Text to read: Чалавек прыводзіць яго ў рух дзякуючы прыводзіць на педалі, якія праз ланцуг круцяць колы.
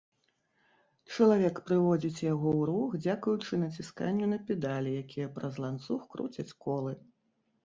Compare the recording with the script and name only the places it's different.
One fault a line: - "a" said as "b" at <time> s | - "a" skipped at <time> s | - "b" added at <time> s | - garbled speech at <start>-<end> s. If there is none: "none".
- "прыводзіць" said as "націсканню" at 3.7 s